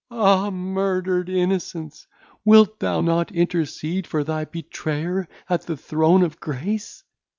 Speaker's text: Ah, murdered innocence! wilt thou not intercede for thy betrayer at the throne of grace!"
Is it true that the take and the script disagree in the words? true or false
false